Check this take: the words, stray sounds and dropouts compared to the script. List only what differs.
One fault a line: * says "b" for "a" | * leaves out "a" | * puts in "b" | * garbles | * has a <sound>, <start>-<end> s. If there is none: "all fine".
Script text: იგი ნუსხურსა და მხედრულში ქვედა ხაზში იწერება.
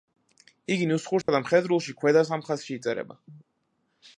* has a dropout, 1.2-1.3 s
* puts in "სამ"